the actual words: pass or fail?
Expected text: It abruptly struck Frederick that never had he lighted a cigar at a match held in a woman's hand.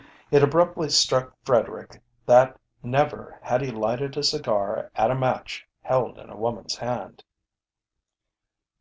pass